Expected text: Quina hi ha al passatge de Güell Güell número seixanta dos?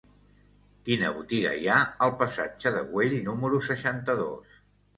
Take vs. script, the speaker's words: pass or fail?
fail